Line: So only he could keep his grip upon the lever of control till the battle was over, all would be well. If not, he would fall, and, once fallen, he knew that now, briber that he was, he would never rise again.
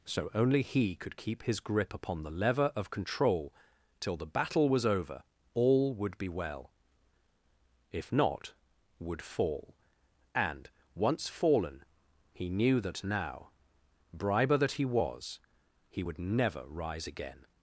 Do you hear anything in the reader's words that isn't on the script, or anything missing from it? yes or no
yes